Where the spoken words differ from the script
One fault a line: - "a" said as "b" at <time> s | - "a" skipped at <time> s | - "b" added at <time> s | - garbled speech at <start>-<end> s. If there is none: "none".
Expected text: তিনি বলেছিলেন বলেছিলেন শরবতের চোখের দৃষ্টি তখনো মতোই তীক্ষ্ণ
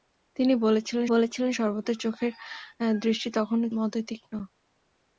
none